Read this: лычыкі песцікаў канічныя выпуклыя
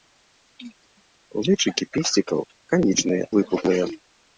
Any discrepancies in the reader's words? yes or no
no